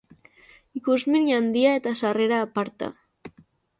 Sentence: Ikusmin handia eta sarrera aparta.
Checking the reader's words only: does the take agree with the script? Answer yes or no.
yes